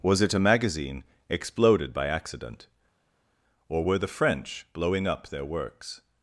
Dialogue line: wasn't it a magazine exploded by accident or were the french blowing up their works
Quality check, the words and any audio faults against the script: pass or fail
fail